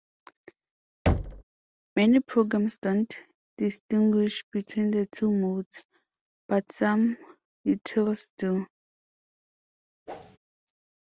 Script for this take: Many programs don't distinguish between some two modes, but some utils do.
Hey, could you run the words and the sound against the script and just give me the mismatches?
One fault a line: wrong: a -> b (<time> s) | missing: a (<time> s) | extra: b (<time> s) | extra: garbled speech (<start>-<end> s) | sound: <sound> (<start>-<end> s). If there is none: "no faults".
sound: thud (1.1-1.4 s)
wrong: some -> the (4.9 s)
sound: whoosh (10.1-10.4 s)